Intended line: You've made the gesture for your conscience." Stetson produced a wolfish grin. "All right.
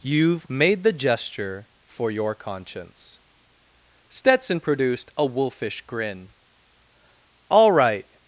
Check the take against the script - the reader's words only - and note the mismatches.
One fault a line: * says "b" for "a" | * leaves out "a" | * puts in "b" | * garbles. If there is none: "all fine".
all fine